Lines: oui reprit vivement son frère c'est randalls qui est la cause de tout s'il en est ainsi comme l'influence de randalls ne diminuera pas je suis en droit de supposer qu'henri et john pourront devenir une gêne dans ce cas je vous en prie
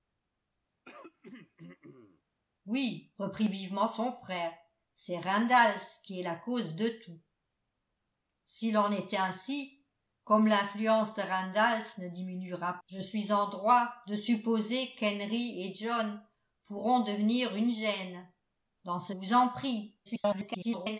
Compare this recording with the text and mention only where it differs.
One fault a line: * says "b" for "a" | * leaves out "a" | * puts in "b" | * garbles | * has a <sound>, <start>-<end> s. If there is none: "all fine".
* has a throat clearing, 0.9-2.2 s
* leaves out "pas"
* leaves out "cas je"
* garbles